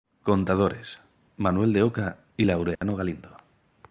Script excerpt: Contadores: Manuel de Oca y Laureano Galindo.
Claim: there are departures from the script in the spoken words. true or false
false